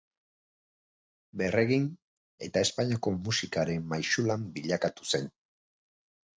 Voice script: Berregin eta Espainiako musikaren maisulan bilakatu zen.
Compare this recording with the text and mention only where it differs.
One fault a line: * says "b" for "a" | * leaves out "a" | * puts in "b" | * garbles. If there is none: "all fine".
all fine